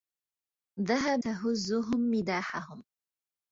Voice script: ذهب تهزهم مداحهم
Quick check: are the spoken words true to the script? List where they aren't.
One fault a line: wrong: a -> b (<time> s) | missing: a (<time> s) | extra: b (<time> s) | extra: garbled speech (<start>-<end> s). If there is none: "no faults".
no faults